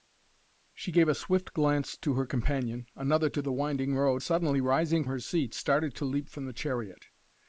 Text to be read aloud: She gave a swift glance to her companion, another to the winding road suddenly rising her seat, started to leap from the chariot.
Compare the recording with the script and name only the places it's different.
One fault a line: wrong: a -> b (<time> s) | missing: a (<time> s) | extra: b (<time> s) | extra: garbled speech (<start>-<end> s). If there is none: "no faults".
no faults